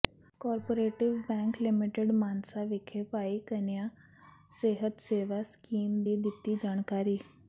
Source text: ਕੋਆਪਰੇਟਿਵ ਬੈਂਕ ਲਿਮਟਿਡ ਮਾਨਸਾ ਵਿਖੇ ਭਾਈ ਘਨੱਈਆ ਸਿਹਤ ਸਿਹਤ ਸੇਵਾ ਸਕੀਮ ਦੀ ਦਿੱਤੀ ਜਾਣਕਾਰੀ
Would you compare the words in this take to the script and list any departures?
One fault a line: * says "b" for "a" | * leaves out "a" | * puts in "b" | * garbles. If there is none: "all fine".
* leaves out "ਸਿਹਤ"